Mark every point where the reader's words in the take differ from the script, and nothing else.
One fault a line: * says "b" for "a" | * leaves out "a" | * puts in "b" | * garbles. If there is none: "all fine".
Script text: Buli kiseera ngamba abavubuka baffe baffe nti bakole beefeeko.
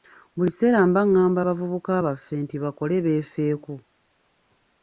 * puts in "mba"
* leaves out "baffe"